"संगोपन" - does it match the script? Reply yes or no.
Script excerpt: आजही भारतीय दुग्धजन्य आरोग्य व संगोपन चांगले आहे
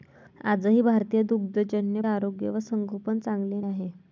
yes